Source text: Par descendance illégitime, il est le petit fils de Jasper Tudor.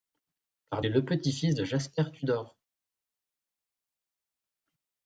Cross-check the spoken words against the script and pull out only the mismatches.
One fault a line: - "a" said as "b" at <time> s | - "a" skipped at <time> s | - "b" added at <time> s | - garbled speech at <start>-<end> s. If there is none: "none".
- "descendance illégitime il" skipped at 0.8 s